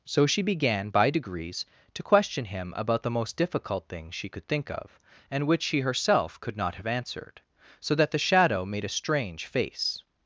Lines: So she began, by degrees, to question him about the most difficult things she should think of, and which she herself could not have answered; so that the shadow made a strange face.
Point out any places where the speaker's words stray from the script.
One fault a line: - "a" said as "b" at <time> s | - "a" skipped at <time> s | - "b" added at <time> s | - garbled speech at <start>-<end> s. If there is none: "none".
- "should" said as "could" at 4.3 s